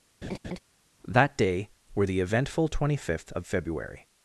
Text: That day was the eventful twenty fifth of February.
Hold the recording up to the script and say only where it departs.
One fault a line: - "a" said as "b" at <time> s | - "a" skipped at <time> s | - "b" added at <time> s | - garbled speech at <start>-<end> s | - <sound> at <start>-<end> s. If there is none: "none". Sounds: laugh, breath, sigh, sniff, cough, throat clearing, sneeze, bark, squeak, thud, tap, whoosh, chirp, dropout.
- laugh at 0.2-0.6 s
- "was" said as "were" at 1.9 s